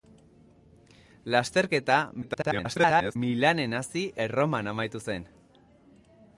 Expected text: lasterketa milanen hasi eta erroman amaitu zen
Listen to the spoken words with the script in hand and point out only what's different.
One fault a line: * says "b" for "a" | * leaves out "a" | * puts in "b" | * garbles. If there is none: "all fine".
* garbles
* leaves out "eta"